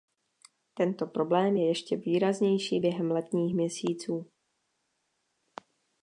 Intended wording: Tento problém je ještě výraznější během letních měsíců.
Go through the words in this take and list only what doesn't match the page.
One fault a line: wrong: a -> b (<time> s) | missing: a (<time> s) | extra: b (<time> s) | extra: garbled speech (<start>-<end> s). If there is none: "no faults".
no faults